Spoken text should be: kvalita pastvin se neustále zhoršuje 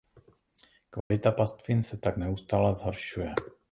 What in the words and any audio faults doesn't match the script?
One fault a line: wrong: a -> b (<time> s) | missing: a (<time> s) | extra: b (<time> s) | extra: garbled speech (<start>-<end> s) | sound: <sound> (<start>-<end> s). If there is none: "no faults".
sound: dropout (1.0-1.1 s)
extra: tak (2.0 s)